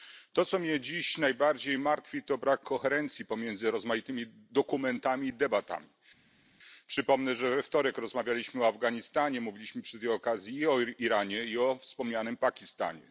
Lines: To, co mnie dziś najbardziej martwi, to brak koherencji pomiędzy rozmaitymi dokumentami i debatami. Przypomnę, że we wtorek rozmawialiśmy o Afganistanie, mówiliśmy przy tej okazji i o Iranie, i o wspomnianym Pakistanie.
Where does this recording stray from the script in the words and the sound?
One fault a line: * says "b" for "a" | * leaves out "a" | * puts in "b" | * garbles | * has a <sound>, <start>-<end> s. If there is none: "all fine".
all fine